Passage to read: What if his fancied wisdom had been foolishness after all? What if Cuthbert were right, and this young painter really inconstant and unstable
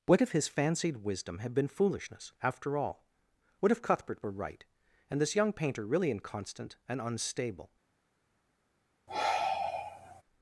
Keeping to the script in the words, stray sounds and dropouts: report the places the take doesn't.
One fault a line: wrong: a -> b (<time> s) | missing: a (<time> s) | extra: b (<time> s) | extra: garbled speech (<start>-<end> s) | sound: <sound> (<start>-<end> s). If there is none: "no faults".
sound: sigh (9.1-10.2 s)